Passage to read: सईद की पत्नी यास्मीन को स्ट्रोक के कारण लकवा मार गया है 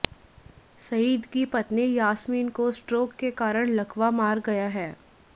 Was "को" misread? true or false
false